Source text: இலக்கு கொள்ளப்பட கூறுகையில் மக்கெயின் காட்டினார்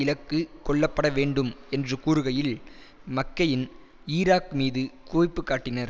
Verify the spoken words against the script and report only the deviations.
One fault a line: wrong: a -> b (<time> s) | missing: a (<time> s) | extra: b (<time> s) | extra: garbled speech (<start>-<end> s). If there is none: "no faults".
extra: வேண்டும் என்று (1.1 s)
extra: ஈராக் மீது குவிப்பு (4.1 s)